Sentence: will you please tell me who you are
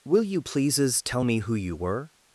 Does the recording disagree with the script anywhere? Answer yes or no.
yes